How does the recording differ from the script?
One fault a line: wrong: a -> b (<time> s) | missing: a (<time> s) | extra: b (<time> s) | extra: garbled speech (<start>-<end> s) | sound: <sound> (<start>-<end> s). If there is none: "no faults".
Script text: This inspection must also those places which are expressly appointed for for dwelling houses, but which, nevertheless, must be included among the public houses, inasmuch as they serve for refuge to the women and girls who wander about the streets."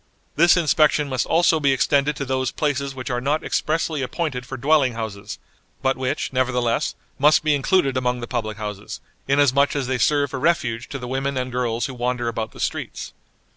extra: be extended to (1.6 s)
extra: not (3.2 s)
missing: for (4.6 s)